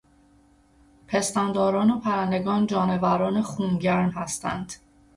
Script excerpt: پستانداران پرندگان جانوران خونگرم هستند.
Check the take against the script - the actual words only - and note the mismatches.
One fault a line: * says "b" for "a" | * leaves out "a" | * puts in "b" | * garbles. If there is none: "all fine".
* puts in "و"